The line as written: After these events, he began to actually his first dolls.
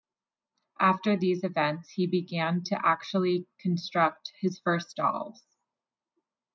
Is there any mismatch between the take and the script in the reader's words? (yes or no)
yes